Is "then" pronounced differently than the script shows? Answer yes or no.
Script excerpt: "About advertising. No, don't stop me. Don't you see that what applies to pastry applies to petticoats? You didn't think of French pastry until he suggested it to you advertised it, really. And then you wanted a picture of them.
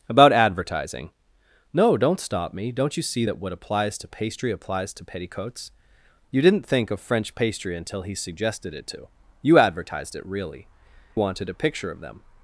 yes